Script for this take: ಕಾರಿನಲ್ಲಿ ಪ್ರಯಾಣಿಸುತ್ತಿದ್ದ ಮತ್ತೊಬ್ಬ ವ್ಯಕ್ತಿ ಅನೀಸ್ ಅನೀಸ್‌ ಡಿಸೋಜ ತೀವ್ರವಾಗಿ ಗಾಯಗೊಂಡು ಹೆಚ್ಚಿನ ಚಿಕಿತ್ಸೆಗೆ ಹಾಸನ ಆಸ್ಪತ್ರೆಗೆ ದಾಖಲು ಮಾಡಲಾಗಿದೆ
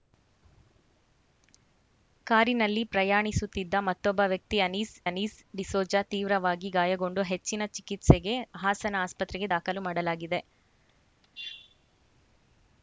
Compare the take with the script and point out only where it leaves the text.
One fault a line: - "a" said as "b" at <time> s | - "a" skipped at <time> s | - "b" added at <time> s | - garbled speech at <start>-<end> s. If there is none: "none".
none